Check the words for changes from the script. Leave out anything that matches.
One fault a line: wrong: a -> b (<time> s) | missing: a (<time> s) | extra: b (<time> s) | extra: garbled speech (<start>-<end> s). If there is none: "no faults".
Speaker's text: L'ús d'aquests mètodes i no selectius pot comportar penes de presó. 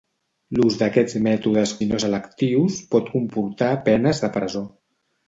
no faults